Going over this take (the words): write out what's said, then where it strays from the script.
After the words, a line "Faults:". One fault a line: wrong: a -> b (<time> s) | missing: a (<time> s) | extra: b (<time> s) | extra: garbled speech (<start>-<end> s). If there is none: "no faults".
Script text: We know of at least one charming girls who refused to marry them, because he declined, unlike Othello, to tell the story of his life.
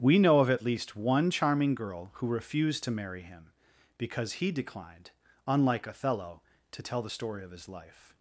We know of at least one charming girl who refused to marry him, because he declined, unlike Othello, to tell the story of his life.
Faults:
wrong: girls -> girl (1.7 s)
wrong: them -> him (3.2 s)